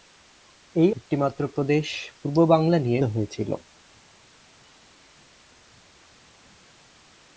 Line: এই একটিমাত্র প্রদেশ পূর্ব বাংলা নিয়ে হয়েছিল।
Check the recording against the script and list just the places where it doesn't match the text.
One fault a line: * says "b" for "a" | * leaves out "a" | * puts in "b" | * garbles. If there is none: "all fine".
all fine